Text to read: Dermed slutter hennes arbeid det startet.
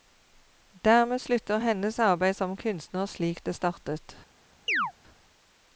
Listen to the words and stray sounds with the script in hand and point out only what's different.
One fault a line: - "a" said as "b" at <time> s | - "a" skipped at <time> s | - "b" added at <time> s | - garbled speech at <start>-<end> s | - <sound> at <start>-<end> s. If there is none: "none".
- "som kunstner slik" added at 2.4 s
- chirp at 4.7-4.9 s